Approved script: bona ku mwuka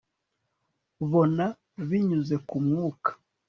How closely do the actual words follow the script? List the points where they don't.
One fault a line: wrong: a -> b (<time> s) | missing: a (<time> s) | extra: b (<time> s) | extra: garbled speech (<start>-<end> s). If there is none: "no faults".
extra: binyuze (1.9 s)